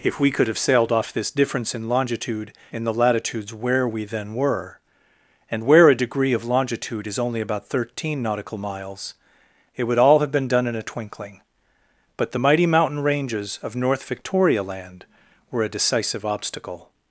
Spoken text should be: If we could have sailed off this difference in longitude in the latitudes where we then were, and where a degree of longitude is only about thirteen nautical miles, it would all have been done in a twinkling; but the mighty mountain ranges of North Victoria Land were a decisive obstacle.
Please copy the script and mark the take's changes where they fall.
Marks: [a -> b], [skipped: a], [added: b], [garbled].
If we could have sailed off this difference in longitude in the latitudes where we then were, and where a degree of longitude is only about thirteen nautical miles, it would all have been done in a twinkling; but the mighty mountain ranges of North Victoria Land were a decisive obstacle.